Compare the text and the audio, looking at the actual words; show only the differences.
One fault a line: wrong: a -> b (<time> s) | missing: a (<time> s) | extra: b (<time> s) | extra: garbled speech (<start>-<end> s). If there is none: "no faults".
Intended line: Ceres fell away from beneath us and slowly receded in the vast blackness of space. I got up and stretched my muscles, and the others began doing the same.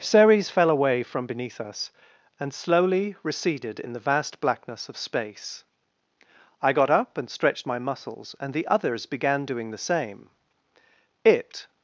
extra: It (11.2 s)